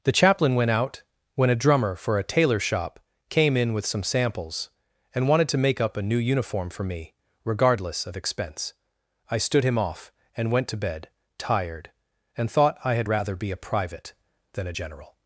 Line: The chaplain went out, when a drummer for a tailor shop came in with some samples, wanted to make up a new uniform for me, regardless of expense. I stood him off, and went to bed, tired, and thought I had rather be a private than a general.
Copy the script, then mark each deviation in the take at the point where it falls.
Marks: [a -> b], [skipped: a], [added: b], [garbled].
The chaplain went out, when a drummer for a tailor shop came in with some samples, [added: and] wanted to make up a new uniform for me, regardless of expense. I stood him off, and went to bed, tired, and thought I had rather be a private than a general.